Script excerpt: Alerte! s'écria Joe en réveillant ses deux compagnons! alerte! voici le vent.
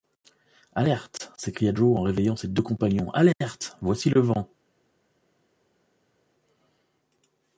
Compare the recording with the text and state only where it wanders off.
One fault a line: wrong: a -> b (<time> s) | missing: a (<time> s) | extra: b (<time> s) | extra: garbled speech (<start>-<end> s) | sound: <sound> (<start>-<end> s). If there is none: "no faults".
no faults